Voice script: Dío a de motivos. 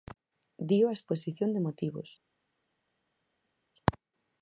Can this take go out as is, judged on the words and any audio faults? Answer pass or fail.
fail